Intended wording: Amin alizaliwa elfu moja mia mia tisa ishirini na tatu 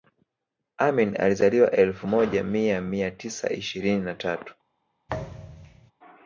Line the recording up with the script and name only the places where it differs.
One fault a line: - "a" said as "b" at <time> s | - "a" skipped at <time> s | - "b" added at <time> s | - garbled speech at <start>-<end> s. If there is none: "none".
none